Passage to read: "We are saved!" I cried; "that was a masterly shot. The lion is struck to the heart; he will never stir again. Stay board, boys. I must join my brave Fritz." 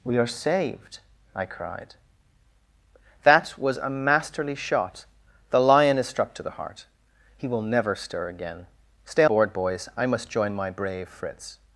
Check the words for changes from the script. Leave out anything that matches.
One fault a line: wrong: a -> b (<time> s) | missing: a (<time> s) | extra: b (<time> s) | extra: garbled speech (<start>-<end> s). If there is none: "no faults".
no faults